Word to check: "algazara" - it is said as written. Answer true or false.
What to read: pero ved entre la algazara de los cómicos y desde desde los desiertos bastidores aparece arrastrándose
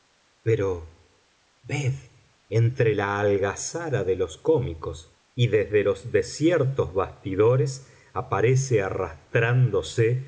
true